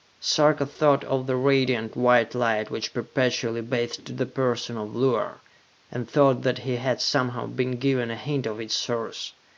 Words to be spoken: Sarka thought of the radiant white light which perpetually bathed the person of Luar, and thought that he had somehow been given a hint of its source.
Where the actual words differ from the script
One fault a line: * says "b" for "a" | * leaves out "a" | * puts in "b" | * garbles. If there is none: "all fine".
all fine